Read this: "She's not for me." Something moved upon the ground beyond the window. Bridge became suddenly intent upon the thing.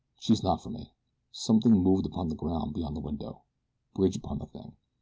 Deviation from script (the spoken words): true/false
true